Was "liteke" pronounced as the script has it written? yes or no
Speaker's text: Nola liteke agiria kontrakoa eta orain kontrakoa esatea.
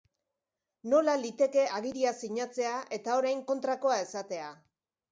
yes